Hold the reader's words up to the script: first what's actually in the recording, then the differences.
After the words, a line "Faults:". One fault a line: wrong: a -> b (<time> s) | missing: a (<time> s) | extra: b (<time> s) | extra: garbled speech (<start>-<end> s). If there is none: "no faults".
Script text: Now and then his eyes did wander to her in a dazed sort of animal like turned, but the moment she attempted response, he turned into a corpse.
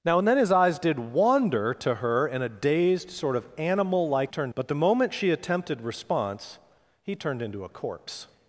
Now and then his eyes did wander to her in a dazed sort of animal like turned, but the moment she attempted response, he turned into a corpse.
Faults:
no faults